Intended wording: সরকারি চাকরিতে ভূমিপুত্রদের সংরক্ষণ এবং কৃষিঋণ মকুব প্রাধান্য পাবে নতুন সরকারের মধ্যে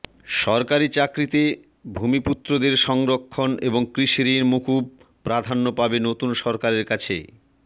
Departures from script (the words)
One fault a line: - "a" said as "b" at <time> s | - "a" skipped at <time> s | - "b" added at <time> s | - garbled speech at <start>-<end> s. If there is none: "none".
- "মধ্যে" said as "কাছে" at 6.9 s